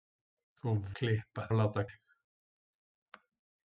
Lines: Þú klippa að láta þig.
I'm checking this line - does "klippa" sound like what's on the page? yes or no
yes